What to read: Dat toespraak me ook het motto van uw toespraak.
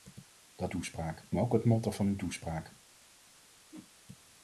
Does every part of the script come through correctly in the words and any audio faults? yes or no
no